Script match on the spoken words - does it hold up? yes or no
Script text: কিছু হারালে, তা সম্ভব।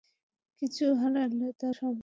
yes